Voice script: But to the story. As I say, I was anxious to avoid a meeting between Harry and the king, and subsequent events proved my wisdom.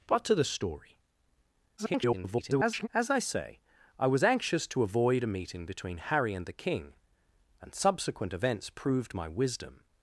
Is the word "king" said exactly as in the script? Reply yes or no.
yes